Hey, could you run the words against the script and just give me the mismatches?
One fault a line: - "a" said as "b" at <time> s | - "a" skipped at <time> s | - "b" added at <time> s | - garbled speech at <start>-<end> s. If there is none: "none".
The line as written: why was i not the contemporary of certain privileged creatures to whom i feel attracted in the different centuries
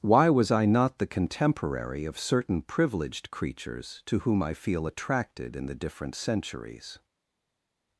none